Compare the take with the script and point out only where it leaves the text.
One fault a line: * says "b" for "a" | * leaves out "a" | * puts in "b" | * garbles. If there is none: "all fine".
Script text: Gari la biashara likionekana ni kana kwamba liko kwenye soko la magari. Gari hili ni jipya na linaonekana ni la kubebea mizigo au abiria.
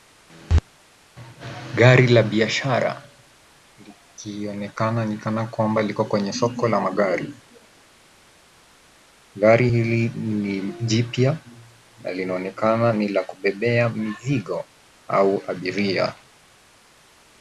all fine